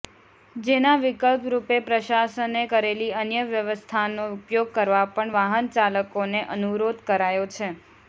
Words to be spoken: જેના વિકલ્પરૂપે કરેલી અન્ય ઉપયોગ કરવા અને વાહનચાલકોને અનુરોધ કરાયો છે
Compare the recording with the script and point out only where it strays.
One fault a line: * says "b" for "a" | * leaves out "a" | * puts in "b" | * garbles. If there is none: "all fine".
* puts in "પ્રશાસને"
* puts in "વ્યવસ્થાનો"
* says "પણ" for "અને"